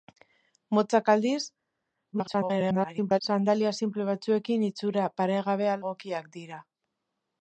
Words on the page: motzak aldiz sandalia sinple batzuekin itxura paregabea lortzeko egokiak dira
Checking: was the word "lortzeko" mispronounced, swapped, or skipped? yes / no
yes